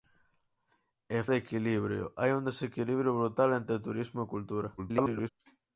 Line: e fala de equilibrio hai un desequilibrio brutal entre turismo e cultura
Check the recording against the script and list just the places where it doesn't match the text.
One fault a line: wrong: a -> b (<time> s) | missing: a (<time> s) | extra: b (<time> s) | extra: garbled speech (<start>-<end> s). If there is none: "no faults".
missing: fala (1.2 s)
extra: garbled speech (4.8-5.3 s)